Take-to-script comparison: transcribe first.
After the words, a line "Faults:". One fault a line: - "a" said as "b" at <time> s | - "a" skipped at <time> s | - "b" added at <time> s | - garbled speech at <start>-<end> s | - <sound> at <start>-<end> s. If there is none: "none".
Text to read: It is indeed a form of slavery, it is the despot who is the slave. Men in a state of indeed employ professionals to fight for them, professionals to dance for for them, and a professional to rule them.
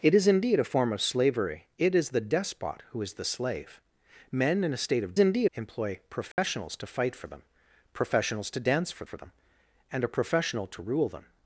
It is indeed a form of slavery, it is the despot who is the slave. Men in a state of indeed employ professionals to fight for them, professionals to dance for for them, and a professional to rule them.
Faults:
- dropout at 6.3-6.4 s